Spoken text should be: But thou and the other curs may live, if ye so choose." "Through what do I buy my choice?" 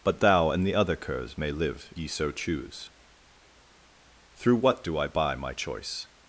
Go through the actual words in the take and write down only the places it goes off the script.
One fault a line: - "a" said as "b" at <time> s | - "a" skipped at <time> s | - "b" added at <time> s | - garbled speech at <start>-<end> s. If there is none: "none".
- "if" skipped at 1.9 s